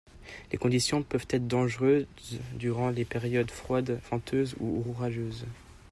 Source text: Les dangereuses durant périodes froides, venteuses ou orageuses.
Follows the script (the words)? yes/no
no